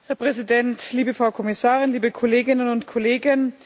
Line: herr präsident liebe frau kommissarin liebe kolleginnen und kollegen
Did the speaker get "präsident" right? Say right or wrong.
right